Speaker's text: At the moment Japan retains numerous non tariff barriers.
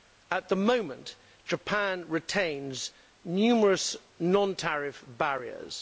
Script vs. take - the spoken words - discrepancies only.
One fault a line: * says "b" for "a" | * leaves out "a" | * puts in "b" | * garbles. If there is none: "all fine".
all fine